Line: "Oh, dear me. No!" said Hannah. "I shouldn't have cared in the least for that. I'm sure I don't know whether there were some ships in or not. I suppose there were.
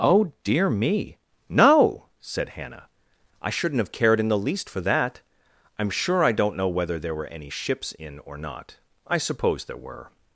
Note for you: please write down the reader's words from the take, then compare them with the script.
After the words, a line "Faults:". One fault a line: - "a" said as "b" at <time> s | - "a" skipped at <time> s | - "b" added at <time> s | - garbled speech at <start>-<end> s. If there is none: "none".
"Oh, dear me. No!" said Hannah. "I shouldn't have cared in the least for that. I'm sure I don't know whether there were any ships in or not. I suppose there were.
Faults:
- "some" said as "any" at 7.3 s